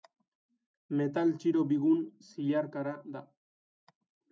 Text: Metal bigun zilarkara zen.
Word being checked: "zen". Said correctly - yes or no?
no